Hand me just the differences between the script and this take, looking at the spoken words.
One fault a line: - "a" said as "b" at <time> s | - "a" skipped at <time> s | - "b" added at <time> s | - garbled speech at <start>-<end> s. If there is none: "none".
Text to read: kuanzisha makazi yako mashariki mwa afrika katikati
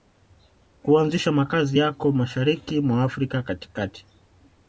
none